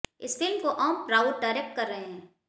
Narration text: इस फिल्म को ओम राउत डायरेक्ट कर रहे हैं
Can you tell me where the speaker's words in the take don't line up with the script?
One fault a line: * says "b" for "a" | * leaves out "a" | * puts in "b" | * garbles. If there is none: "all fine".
all fine